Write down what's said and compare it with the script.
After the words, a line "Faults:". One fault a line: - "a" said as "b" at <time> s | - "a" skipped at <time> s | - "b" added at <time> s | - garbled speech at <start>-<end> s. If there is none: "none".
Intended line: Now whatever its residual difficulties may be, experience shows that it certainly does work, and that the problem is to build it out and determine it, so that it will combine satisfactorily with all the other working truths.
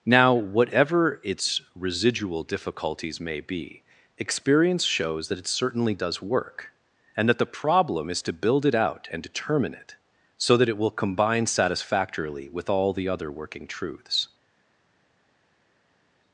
Now whatever its residual difficulties may be, experience shows that it certainly does work, and that the problem is to build it out and determine it, so that it will combine satisfactorily with all the other working truths.
Faults:
none